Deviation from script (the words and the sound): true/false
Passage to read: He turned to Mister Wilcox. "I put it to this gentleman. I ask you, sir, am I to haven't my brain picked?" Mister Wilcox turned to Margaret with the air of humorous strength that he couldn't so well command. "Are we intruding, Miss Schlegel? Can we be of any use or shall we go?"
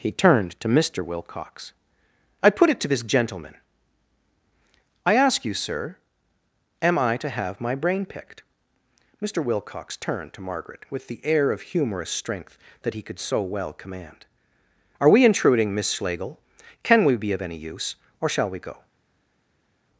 true